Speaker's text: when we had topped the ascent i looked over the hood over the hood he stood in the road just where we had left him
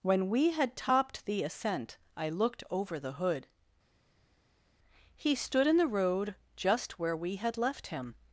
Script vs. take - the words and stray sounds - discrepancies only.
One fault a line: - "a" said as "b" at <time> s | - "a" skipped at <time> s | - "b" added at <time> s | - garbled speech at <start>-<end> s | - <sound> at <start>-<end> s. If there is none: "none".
- "over the hood" skipped at 3.5 s